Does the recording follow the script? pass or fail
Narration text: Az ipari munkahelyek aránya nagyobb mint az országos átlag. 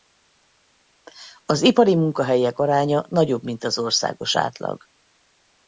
pass